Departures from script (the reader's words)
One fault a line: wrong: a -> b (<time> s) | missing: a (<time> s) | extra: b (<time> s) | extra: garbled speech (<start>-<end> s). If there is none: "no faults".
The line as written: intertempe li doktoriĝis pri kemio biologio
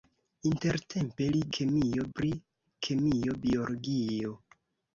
wrong: doktoriĝis -> kemio (1.6 s)